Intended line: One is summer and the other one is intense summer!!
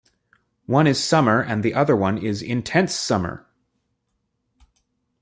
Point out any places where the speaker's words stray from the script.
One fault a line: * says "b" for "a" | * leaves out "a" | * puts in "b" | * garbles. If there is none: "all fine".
all fine